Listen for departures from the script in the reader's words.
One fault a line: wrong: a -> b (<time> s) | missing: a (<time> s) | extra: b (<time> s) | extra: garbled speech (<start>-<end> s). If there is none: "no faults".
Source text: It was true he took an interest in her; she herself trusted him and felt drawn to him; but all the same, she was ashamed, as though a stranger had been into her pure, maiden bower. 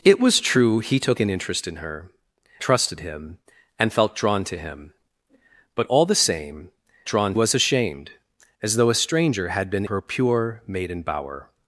missing: she herself (2.1 s)
wrong: she -> drawn (7.1 s)
missing: into (9.9 s)